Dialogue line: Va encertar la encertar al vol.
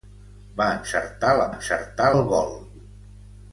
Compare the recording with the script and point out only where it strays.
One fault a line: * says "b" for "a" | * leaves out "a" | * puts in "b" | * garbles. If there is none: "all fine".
all fine